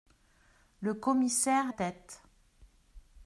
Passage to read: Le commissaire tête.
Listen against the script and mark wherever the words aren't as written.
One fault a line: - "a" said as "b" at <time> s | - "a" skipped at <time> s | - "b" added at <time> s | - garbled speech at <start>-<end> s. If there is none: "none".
none